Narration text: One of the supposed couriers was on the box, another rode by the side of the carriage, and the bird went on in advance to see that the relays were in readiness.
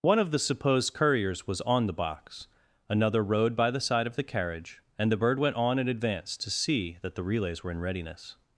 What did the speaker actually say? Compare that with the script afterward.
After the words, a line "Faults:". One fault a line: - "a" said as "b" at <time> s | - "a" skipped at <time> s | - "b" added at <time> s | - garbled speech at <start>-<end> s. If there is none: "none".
One of the supposed couriers was on the box, another rode by the side of the carriage, and the bird went on in advance to see that the relays were in readiness.
Faults:
none